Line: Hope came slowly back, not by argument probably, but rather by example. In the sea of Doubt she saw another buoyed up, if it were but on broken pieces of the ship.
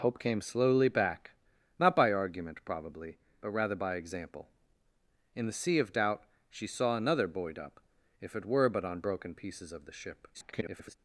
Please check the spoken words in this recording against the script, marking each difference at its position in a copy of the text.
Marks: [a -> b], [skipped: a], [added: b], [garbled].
Hope came slowly back, not by argument probably, but rather by example. In the sea of Doubt she saw another buoyed up, if it were but on broken pieces of the ship. [garbled]